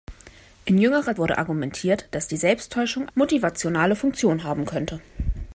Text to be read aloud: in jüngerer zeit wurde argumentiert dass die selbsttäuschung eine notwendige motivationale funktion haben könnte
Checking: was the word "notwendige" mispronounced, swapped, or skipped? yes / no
yes